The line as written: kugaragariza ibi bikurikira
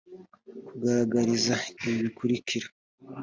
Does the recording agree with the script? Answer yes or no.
yes